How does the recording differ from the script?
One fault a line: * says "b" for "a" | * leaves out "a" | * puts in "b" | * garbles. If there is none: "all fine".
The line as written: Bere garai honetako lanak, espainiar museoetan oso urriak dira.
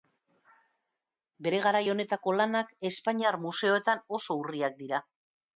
all fine